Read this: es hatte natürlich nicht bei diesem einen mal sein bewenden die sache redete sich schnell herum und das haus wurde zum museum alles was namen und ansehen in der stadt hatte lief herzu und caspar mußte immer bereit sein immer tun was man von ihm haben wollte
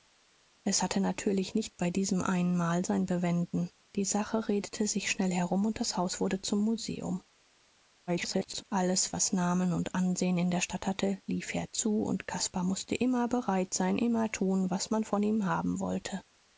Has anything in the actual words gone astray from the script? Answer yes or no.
yes